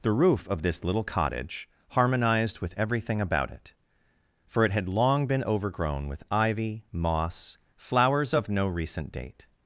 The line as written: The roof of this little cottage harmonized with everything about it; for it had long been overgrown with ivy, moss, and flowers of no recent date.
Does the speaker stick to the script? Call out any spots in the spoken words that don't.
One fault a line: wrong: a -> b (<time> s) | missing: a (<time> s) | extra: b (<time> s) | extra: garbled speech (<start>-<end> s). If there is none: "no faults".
missing: and (7.6 s)